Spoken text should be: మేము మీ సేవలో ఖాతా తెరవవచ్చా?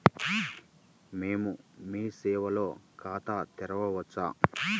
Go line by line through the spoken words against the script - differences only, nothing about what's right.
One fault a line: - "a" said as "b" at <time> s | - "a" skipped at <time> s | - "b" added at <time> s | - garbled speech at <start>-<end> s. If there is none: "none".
none